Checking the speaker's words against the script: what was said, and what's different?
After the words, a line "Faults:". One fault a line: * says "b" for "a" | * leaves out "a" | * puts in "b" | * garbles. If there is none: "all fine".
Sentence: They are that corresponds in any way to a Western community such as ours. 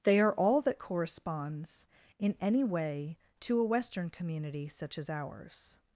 They are all that corresponds in any way to a Western community such as ours.
Faults:
* puts in "all"